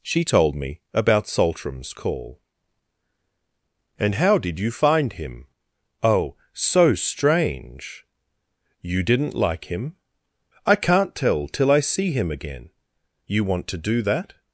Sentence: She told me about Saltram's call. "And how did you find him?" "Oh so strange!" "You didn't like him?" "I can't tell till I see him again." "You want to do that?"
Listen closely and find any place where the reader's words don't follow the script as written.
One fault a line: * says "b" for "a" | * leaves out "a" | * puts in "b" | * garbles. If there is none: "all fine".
all fine